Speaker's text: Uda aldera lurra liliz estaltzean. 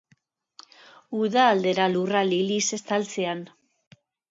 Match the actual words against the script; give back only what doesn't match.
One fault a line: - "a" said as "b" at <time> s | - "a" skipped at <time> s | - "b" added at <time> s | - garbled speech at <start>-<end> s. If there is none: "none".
none